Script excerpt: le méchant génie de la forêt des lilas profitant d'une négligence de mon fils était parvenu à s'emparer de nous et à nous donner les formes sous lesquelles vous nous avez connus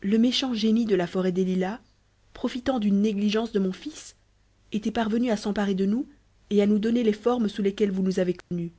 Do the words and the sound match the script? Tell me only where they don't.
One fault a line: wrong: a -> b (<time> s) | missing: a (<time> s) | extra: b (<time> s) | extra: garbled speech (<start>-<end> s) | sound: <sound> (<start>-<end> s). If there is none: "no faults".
sound: dropout (8.4-8.5 s)